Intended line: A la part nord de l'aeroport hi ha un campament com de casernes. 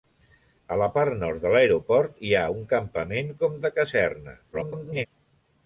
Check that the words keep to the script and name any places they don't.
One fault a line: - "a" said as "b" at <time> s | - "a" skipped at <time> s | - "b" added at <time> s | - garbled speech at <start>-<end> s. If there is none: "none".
- garbled speech at 4.5-5.1 s